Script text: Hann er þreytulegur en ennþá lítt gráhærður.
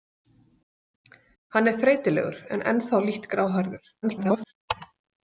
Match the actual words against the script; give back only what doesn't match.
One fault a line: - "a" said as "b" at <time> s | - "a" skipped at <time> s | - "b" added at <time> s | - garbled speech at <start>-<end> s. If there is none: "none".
- garbled speech at 4.0-4.5 s